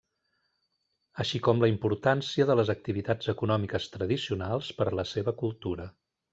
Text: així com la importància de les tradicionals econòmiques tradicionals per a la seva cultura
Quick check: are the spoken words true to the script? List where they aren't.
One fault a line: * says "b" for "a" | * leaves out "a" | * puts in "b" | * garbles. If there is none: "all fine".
* says "activitats" for "tradicionals"